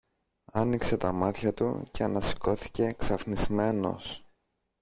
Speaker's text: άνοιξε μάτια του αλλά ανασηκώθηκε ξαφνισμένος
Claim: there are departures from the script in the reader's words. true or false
true